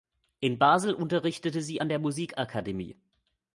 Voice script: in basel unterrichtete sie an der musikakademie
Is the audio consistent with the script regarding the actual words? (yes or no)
yes